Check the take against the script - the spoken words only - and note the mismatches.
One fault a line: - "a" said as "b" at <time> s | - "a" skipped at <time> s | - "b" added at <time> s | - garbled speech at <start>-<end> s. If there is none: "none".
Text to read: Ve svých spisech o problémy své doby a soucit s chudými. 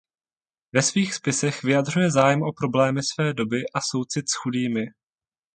- "vyjadřuje zájem" added at 1.6 s